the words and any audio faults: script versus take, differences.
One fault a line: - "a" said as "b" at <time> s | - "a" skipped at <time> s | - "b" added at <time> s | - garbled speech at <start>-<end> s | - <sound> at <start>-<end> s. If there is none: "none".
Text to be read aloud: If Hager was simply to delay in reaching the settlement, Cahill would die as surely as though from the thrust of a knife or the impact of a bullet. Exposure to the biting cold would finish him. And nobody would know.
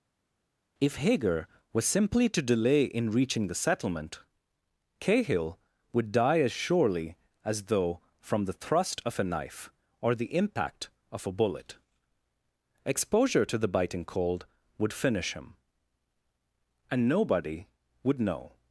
none